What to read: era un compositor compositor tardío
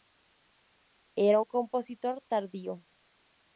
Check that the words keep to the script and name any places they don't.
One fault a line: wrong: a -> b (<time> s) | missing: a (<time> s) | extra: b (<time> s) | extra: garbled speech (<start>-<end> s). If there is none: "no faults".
missing: compositor (2.2 s)